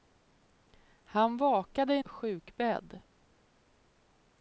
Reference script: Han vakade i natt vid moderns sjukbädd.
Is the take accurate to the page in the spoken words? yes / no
no